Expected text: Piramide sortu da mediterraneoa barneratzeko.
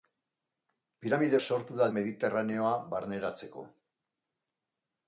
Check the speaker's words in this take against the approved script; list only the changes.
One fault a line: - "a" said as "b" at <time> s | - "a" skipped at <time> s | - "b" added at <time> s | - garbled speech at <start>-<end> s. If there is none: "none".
none